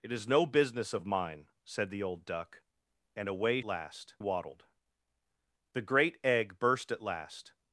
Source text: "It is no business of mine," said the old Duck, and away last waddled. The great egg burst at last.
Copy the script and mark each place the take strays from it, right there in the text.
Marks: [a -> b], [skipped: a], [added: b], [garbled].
"It is no business of mine," said the old Duck, and away last waddled. The great egg burst at last.